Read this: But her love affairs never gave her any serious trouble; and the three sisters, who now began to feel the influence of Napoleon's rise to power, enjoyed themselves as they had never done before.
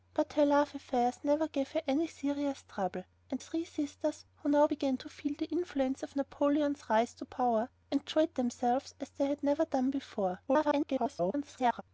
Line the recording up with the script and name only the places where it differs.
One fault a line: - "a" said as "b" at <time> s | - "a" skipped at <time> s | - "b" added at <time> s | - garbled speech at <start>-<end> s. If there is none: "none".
- "the" skipped at 3.4 s
- garbled speech at 10.5-11.8 s